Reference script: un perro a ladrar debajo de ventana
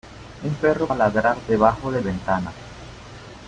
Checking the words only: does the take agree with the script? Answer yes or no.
yes